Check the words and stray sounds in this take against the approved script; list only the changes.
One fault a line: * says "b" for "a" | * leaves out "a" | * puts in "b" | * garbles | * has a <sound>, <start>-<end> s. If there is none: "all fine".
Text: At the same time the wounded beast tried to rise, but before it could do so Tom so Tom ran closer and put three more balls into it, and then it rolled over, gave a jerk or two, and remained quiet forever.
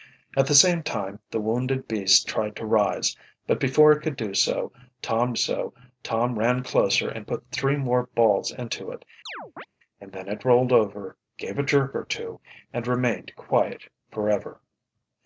* has a chirp, 9.3-9.7 s